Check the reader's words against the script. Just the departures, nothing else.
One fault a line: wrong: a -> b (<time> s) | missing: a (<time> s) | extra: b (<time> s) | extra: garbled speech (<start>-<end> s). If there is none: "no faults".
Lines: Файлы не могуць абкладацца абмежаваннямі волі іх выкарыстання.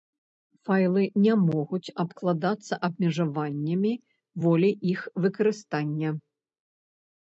no faults